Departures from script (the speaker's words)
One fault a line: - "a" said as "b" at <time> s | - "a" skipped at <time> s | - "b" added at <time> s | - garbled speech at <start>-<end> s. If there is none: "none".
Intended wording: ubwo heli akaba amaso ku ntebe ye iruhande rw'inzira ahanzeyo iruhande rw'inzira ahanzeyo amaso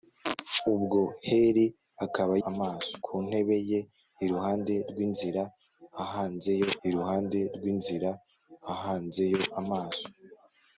none